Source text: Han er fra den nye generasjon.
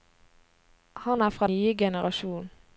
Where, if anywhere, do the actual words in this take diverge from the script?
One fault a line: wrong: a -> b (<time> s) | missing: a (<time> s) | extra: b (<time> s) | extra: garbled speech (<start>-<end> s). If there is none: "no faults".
missing: den (1.5 s)